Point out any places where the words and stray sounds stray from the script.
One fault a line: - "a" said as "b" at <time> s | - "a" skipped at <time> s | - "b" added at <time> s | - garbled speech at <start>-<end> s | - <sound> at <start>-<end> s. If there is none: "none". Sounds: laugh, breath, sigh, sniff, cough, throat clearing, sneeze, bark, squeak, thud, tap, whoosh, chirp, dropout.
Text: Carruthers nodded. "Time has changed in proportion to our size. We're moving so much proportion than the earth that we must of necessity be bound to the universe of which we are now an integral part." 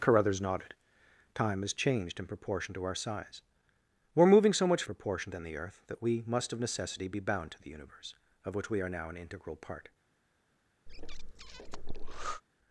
- breath at 10.9-12.4 s